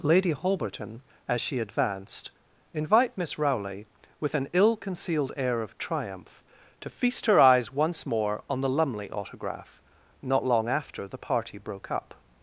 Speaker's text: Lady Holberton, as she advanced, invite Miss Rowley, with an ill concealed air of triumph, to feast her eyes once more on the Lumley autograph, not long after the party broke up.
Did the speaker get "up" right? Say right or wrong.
right